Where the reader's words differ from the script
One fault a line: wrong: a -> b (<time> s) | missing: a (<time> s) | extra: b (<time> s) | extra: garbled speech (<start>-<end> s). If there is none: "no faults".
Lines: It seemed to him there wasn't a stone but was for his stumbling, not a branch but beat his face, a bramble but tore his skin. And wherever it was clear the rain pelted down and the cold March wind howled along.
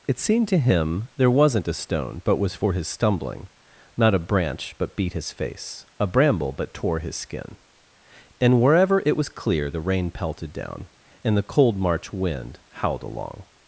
no faults